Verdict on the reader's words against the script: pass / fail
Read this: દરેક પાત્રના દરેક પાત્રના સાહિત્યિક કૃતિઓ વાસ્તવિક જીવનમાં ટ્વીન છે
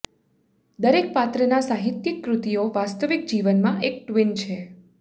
fail